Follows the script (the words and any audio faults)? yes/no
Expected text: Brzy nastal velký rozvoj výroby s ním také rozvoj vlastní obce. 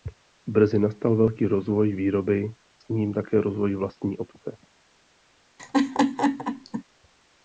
no